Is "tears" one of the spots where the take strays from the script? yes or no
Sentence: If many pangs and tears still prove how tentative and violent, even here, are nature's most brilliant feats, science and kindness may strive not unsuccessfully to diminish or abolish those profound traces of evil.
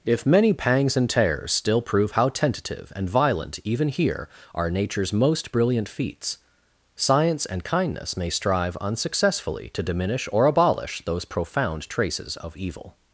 no